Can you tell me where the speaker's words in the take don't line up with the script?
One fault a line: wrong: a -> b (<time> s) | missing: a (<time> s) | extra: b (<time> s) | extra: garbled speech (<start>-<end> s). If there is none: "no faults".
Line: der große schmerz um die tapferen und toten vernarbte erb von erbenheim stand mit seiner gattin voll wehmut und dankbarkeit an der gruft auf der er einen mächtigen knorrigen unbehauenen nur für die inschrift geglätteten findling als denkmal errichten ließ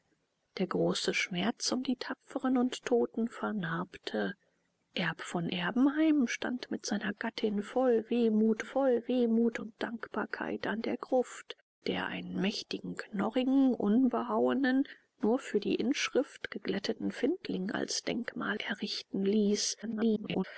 extra: voll wehmut (8.6 s)
missing: auf (11.6 s)
extra: garbled speech (19.8-20.4 s)